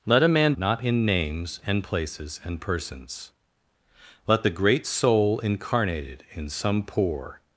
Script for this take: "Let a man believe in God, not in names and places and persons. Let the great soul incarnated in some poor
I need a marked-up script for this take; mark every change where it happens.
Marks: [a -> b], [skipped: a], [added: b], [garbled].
"Let a man [skipped: believe in God,] not in names and places and persons. Let the great soul incarnated in some poor